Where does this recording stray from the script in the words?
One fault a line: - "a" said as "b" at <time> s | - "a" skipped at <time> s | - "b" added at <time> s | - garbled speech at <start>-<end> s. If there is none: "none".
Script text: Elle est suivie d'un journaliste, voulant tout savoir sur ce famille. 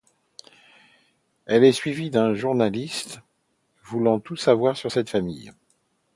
- "ce" said as "cette" at 4.9 s